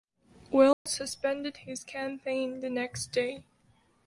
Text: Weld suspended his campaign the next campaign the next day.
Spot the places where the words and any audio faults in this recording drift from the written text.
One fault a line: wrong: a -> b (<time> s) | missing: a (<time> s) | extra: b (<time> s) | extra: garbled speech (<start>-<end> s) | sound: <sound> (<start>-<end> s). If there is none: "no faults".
sound: dropout (0.7-0.9 s)
missing: campaign the next (3.1 s)